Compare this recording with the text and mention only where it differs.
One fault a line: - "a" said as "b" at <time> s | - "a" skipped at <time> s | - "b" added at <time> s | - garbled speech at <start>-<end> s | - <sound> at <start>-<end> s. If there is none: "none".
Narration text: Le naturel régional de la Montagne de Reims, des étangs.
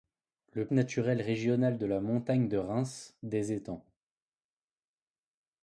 none